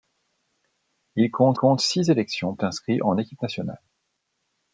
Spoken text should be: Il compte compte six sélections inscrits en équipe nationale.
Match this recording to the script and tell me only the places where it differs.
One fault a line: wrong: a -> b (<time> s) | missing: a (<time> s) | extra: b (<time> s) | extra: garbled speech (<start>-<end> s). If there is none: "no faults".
no faults